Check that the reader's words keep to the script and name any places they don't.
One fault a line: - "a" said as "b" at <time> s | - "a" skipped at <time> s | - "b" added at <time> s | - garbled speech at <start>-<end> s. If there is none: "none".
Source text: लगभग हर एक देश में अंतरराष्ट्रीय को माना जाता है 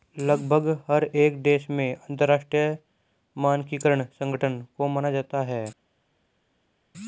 - "मानकीकरण संगठन" added at 3.4 s